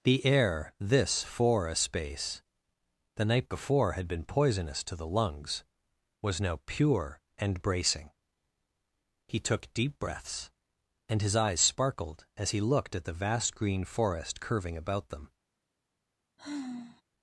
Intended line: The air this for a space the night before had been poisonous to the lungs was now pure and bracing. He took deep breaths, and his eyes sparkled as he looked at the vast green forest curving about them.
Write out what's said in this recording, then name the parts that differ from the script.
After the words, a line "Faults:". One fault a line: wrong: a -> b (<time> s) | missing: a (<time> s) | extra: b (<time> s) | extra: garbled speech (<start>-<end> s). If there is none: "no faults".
The air this for a space the night before had been poisonous to the lungs was now pure and bracing. He took deep breaths, and his eyes sparkled as he looked at the vast green forest curving about them.
Faults:
no faults